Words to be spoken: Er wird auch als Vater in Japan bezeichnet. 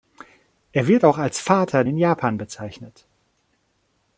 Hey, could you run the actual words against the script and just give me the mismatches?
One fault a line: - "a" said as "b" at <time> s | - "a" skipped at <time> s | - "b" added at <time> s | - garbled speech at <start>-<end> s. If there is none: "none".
none